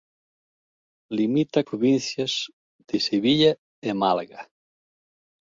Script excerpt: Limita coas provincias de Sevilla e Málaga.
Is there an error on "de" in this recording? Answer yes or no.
no